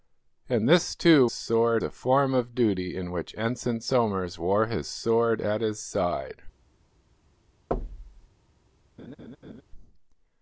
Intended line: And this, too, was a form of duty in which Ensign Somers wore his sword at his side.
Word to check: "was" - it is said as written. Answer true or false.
false